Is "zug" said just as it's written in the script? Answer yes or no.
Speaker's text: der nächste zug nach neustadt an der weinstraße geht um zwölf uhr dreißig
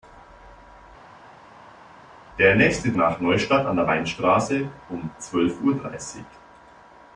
no